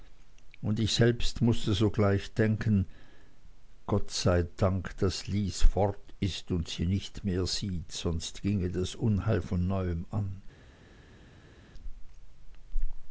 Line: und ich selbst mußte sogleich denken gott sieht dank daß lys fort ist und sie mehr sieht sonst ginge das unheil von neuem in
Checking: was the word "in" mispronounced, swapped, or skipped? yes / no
yes